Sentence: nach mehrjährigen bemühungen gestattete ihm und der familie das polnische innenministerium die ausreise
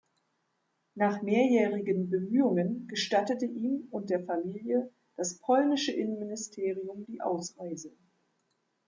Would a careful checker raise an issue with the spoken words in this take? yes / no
no